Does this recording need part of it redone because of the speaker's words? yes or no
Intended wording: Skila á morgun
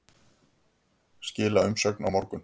yes